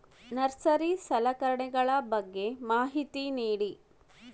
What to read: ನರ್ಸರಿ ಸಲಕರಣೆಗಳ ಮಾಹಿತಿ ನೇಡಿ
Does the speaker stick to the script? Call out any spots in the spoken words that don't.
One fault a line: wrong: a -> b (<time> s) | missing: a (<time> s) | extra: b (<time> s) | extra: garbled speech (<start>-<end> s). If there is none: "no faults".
extra: ಬಗ್ಗೆ (2.1 s)